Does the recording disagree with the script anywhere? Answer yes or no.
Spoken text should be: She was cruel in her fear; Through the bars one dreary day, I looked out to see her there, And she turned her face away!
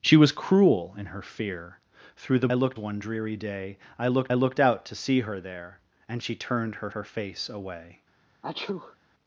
yes